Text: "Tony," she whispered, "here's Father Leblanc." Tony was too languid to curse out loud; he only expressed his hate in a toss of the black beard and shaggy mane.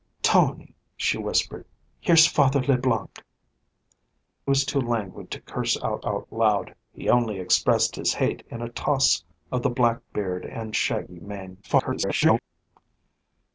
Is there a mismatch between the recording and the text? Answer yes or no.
yes